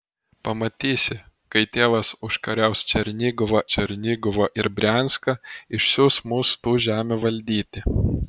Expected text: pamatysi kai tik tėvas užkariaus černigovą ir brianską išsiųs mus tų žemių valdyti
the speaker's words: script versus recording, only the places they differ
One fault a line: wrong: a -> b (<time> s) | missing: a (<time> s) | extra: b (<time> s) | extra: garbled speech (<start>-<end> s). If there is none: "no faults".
missing: tik (1.6 s)
extra: černigovą (3.8 s)